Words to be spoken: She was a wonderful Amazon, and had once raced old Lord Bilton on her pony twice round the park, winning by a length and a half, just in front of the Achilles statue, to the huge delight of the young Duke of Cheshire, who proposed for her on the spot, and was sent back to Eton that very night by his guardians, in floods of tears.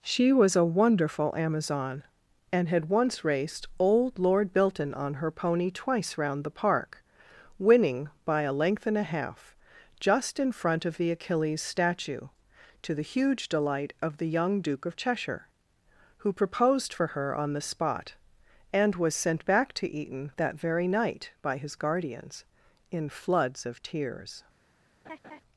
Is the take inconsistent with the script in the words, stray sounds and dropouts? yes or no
yes